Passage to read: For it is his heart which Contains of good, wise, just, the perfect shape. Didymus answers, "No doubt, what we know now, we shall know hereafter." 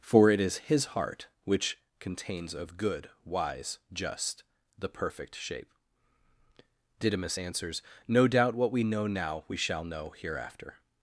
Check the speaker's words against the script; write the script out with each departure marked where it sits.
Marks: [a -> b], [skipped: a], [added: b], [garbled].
For it is his heart which Contains of good, wise, just, the perfect shape. Didymus answers, "No doubt, what we know now, we shall know hereafter."